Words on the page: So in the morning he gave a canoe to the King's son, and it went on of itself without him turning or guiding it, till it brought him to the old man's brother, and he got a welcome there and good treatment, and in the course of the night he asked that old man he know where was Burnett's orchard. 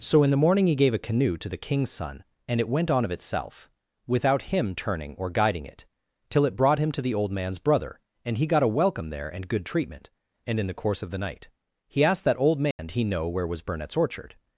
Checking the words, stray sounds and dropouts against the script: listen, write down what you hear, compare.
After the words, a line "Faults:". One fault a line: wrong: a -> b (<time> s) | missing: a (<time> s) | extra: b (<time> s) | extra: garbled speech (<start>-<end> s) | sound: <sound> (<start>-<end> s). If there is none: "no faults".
So in the morning he gave a canoe to the King's son, and it went on of itself without him turning or guiding it, till it brought him to the old man's brother, and he got a welcome there and good treatment, and in the course of the night he asked that old man he know where was Burnett's orchard.
Faults:
sound: dropout (12.7-12.8 s)